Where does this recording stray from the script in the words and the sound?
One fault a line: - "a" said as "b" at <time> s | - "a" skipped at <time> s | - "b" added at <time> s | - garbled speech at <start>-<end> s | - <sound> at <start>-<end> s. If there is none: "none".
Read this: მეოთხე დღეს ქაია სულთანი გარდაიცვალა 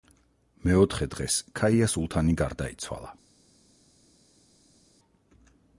none